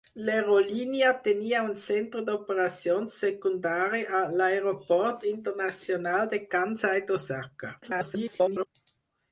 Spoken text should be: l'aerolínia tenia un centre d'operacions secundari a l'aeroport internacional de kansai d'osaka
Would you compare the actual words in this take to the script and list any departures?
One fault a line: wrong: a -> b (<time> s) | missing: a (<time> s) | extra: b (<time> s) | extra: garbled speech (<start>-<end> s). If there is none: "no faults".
extra: garbled speech (7.8-8.7 s)